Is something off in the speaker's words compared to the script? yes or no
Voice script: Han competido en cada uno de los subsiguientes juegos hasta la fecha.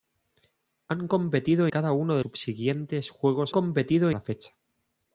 yes